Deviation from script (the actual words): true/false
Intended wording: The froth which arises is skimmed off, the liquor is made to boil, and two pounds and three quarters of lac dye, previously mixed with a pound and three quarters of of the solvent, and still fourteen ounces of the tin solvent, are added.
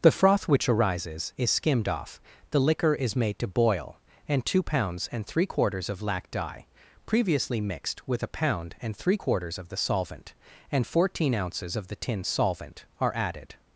true